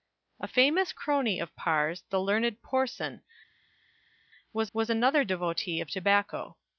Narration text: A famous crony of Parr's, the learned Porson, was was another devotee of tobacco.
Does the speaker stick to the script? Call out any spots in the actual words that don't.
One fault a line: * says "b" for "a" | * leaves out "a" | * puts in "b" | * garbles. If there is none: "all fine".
all fine